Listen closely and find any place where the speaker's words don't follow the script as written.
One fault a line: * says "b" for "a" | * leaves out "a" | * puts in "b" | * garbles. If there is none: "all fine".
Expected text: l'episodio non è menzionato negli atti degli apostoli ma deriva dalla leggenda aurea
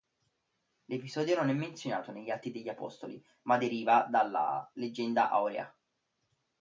all fine